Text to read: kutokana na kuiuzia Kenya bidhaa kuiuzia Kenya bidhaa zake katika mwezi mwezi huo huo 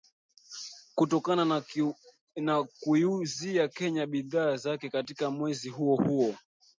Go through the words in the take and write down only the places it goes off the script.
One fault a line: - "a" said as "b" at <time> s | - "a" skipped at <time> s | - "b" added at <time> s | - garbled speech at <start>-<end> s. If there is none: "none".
- "kuiuzia Kenya bidhaa" skipped at 4.5 s
- "mwezi" skipped at 5.7 s